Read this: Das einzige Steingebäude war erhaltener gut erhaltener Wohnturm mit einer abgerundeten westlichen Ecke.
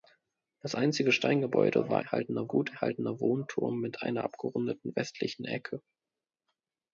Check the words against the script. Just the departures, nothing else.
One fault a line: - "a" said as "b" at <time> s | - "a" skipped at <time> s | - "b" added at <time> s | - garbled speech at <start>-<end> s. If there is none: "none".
none